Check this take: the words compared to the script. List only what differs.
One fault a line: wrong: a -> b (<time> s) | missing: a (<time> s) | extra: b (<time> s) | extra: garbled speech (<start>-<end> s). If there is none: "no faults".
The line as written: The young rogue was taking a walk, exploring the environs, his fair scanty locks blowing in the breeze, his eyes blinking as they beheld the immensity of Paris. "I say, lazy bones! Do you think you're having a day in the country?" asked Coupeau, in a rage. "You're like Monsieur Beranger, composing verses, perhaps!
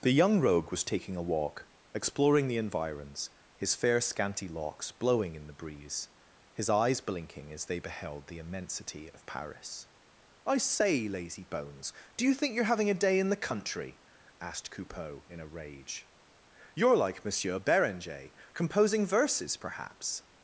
no faults